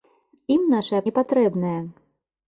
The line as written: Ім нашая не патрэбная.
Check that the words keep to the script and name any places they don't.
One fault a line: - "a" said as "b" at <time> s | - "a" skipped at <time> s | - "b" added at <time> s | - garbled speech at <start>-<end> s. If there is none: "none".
none